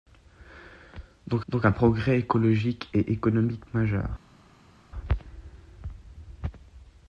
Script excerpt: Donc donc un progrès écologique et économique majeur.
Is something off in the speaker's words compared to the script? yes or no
no